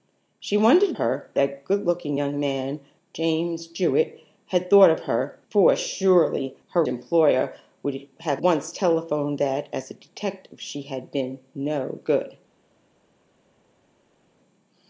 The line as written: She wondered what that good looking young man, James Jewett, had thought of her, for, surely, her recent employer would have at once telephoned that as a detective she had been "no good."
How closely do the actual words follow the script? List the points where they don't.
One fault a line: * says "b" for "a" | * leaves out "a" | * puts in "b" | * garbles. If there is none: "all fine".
* says "her" for "what"
* leaves out "recent"
* leaves out "at"